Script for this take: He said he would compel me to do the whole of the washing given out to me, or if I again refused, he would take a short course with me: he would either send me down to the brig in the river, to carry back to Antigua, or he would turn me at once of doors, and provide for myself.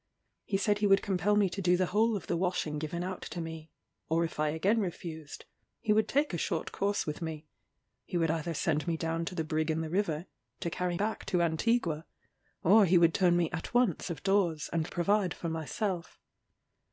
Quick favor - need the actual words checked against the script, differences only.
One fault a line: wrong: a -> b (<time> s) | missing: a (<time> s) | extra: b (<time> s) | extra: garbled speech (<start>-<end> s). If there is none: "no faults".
no faults